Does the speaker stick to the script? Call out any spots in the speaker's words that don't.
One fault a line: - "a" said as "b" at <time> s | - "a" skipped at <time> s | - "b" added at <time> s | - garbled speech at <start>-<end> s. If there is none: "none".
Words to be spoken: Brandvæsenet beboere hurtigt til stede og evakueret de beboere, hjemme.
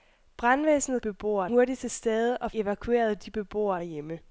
none